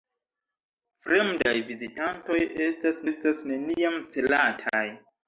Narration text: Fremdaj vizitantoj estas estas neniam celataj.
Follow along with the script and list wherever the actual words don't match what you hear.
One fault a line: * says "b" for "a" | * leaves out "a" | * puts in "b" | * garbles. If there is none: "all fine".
all fine